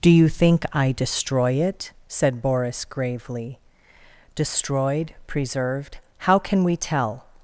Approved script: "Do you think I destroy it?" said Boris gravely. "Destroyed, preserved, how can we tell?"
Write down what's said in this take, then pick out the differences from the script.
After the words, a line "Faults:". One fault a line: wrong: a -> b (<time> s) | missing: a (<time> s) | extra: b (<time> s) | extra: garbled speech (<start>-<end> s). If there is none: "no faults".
"Do you think I destroy it?" said Boris gravely. "Destroyed, preserved, how can we tell?"
Faults:
no faults